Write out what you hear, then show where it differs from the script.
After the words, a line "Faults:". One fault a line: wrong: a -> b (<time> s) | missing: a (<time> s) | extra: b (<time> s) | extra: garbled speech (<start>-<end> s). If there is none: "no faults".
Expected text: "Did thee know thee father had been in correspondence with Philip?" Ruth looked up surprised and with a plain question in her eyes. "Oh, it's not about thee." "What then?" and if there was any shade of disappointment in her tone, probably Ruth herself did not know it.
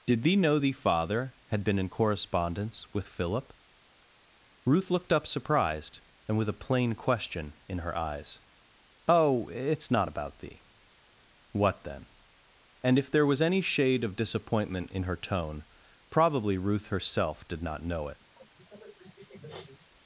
"Did thee know thee father had been in correspondence with Philip?" Ruth looked up surprised and with a plain question in her eyes. "Oh, it's not about thee." "What then?" and if there was any shade of disappointment in her tone, probably Ruth herself did not know it.
Faults:
no faults